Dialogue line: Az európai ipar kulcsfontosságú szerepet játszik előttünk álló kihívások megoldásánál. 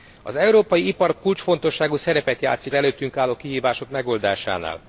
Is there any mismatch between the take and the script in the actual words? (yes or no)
no